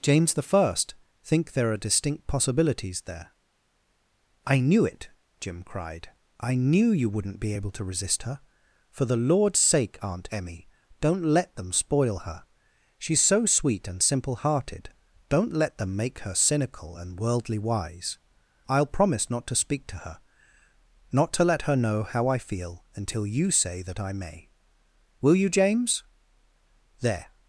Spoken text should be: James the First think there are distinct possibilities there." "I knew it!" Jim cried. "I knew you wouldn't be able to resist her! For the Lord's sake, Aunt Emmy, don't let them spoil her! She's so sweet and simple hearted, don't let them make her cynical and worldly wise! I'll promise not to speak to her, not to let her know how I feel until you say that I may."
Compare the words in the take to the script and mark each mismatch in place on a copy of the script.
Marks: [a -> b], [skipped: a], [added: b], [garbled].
James the First think there are distinct possibilities there." "I knew it!" Jim cried. "I knew you wouldn't be able to resist her! For the Lord's sake, Aunt Emmy, don't let them spoil her! She's so sweet and simple hearted, don't let them make her cynical and worldly wise! I'll promise not to speak to her, not to let her know how I feel until you say that I may." [added: Will you James There]